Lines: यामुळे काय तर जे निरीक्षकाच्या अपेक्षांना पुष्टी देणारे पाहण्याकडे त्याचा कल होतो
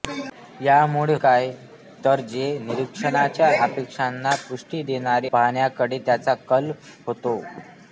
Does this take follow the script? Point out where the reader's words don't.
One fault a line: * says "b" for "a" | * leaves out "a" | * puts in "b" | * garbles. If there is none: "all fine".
all fine